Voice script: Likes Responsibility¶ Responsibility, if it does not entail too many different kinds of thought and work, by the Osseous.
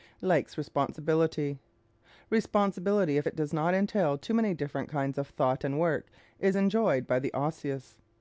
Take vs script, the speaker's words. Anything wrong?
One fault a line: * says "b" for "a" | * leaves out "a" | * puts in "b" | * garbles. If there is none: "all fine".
* puts in "is enjoyed"